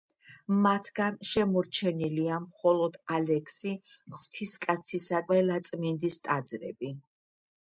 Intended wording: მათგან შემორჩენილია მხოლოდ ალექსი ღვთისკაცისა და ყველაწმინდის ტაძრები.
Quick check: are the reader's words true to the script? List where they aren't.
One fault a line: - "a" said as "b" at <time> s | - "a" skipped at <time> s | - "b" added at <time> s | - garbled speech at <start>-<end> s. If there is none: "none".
- "და" skipped at 5.3 s